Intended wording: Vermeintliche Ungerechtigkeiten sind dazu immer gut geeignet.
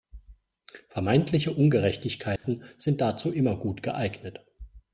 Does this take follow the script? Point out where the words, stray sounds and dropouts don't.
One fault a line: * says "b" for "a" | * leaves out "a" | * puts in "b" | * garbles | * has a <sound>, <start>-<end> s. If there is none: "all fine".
* has a dropout, 2.4-2.4 s